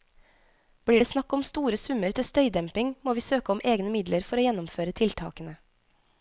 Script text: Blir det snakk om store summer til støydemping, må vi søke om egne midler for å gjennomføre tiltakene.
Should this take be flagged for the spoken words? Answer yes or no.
no